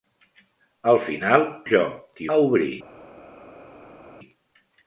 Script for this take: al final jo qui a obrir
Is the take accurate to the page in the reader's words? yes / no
yes